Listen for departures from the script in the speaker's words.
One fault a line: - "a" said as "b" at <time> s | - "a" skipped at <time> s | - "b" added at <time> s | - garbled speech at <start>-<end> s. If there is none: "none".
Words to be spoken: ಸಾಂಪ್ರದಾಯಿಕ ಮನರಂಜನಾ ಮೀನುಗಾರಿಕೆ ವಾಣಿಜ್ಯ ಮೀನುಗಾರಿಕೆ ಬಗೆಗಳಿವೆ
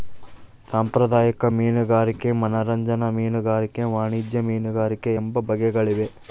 - "ಮೀನುಗಾರಿಕೆ" added at 1.5 s
- "ಎಂಬ" added at 5.2 s